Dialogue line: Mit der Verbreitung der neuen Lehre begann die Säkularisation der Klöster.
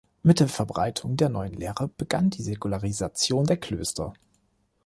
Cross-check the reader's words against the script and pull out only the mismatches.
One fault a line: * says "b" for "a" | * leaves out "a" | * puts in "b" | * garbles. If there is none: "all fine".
all fine